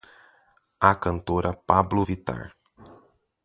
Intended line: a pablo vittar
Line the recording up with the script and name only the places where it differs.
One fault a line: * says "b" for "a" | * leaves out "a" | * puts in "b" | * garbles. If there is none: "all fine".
* puts in "cantora"